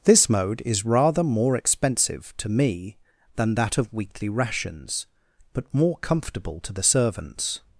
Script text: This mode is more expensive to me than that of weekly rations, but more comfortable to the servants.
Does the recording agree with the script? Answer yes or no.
no